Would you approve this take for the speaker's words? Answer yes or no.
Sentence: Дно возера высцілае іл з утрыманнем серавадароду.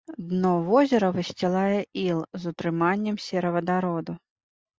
yes